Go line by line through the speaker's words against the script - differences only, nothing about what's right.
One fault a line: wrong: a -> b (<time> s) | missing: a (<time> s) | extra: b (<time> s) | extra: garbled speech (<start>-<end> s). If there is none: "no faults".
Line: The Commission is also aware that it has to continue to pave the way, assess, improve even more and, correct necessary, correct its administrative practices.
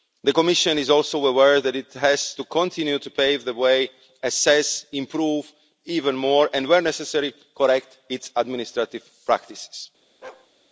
wrong: correct -> where (6.7 s)